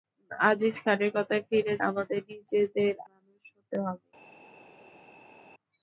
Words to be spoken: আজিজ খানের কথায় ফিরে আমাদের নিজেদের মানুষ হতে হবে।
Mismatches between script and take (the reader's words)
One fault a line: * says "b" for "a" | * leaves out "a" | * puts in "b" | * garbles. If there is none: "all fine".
all fine